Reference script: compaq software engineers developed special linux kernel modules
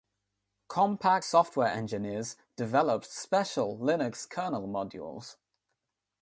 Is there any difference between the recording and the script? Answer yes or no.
no